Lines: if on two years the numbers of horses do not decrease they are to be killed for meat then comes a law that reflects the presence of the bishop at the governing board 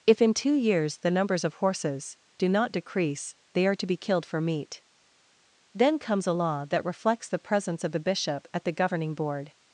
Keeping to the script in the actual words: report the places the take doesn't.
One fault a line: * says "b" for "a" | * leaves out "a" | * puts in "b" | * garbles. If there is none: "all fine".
* says "in" for "on"